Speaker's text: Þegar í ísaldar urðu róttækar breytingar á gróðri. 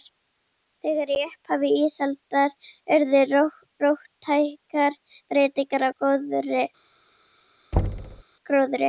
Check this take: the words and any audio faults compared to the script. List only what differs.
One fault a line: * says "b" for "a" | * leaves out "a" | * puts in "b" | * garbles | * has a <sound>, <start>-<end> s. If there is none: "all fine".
* puts in "upphafi"
* has a thud, 7.7-8.2 s